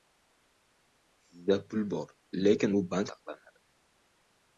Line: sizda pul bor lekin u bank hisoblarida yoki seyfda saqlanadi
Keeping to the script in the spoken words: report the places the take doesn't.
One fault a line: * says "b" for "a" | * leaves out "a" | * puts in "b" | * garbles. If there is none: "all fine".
* leaves out "hisoblarida yoki seyfda"